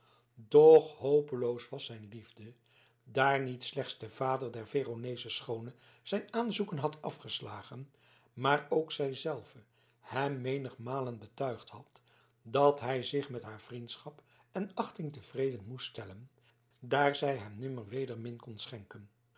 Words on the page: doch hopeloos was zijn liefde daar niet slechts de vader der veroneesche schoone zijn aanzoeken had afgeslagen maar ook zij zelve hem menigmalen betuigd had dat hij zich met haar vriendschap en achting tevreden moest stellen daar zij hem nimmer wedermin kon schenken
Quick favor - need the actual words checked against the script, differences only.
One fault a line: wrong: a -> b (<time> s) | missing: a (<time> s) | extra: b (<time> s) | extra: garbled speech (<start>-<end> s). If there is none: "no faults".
no faults